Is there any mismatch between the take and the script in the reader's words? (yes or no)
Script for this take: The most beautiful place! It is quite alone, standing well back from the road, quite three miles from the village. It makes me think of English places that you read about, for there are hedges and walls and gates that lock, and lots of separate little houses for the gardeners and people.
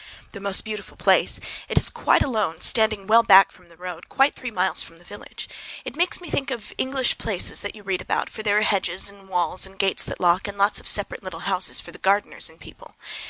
no